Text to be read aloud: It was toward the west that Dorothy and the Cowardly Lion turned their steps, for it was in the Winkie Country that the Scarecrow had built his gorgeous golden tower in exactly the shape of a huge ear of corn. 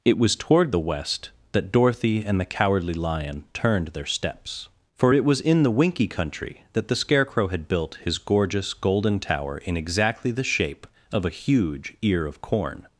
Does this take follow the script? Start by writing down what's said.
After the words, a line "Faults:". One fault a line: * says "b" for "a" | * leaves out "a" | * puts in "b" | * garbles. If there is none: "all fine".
It was toward the west that Dorothy and the Cowardly Lion turned their steps, for it was in the Winkie Country that the Scarecrow had built his gorgeous golden tower in exactly the shape of a huge ear of corn.
Faults:
all fine